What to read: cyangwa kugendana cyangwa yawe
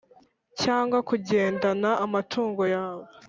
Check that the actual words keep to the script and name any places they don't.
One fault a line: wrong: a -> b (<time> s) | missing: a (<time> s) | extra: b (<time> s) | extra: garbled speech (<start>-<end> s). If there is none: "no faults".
wrong: cyangwa -> amatungo (2.0 s)